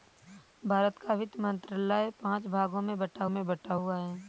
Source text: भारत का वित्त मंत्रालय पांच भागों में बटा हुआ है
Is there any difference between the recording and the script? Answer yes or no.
yes